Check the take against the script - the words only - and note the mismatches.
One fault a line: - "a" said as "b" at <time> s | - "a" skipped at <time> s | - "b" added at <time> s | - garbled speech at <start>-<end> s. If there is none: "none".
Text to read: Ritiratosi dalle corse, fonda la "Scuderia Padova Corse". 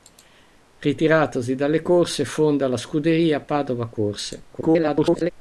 - garbled speech at 4.5-5.3 s